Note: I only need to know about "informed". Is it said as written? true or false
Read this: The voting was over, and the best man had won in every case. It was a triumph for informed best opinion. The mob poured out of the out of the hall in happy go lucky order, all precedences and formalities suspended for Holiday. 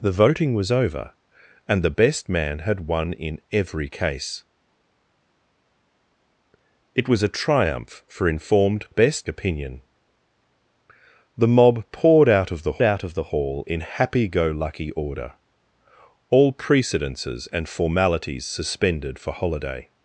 true